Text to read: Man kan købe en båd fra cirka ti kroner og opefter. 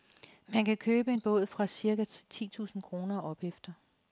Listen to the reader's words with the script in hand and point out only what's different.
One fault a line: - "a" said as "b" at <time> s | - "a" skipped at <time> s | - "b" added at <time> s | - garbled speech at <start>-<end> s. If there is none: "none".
- "tusind" added at 2.5 s